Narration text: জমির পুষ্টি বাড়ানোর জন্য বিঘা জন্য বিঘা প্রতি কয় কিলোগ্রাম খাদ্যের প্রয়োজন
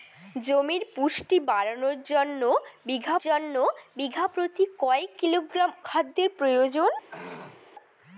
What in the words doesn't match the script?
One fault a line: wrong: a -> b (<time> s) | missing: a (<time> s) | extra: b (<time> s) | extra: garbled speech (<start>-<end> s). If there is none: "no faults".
no faults